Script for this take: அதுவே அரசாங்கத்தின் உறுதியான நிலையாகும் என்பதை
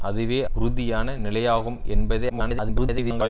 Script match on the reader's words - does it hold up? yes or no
no